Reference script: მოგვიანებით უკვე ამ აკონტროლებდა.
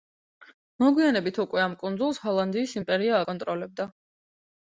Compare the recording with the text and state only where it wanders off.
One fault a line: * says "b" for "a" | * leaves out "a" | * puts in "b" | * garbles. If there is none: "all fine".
* puts in "კუნძულს ჰოლანდიის იმპერია"